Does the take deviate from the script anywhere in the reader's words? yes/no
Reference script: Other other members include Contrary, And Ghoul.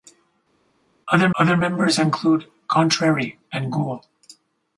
no